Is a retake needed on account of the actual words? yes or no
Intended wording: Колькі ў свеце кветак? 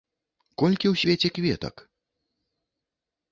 no